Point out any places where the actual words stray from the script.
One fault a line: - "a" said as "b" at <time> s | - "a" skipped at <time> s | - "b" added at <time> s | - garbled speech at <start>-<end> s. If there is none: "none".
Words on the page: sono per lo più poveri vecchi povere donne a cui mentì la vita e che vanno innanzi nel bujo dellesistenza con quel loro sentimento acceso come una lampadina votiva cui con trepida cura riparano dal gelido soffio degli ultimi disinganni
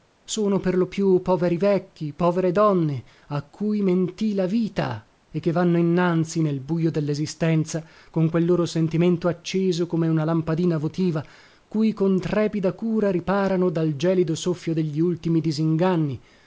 none